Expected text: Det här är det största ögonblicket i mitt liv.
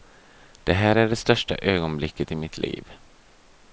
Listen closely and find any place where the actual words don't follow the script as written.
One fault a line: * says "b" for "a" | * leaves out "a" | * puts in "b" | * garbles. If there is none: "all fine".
all fine